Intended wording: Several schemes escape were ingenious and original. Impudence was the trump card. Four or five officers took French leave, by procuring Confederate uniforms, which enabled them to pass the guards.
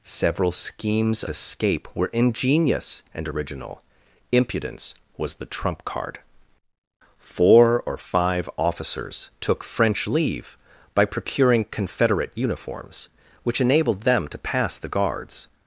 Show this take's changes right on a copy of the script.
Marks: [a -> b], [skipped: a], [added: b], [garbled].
Several schemes escape were ingenious and original. Impudence was the trump card. Four or five officers took French leave, by procuring Confederate uniforms, which enabled them to pass the guards.